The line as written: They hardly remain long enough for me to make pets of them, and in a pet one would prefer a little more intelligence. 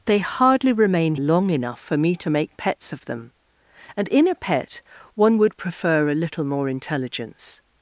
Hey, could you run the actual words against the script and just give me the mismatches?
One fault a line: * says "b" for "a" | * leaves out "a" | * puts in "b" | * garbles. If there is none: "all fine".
all fine